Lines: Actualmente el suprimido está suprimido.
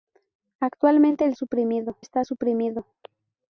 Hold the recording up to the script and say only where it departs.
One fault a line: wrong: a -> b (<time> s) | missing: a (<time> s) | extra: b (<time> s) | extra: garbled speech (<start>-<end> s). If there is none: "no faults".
no faults